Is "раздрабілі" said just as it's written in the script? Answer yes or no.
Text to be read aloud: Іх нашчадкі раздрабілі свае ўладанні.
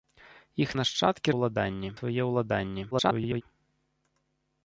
no